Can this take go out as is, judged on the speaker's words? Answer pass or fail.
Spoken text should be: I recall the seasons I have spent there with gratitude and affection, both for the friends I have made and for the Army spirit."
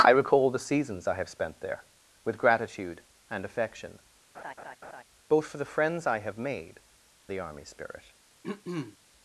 fail